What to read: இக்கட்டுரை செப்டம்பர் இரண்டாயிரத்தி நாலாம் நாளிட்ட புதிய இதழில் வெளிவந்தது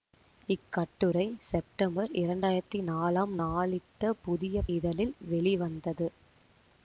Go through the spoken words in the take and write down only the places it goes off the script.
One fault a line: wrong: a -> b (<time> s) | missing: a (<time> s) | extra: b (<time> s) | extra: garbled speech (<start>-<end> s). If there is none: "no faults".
no faults